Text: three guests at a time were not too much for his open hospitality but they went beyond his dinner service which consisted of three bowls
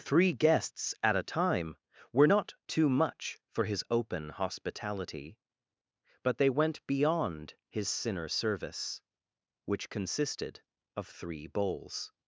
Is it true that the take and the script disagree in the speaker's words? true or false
true